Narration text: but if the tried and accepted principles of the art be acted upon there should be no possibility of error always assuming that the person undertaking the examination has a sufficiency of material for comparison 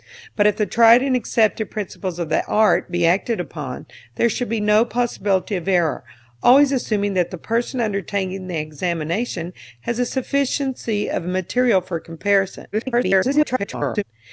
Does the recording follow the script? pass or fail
fail